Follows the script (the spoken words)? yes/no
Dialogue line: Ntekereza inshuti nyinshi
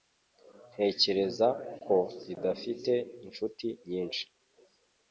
no